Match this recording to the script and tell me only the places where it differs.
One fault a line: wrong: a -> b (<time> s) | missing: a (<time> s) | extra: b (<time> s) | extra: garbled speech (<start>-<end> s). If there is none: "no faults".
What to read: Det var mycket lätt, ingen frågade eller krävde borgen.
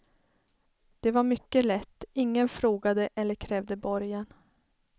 no faults